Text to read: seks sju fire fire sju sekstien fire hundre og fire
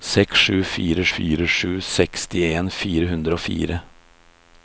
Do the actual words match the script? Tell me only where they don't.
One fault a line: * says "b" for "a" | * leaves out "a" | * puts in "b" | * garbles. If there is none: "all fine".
all fine